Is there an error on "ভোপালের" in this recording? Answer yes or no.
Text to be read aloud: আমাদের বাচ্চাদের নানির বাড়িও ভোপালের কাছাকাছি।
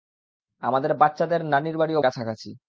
yes